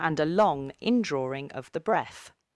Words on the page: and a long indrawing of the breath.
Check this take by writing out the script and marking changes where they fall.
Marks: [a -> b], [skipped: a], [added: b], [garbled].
and a long indrawing of the breath.